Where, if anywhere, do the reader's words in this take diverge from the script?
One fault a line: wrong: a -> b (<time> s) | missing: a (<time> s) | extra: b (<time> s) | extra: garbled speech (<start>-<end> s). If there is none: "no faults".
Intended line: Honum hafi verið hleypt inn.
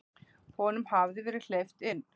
no faults